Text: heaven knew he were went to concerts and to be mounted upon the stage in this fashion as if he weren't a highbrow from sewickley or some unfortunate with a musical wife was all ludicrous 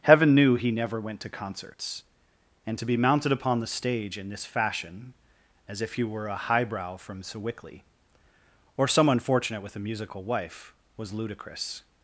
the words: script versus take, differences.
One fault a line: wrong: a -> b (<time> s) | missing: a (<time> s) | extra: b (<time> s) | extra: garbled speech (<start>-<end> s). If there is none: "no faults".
wrong: were -> never (0.7 s)
wrong: weren't -> were (6.0 s)
missing: all (11.1 s)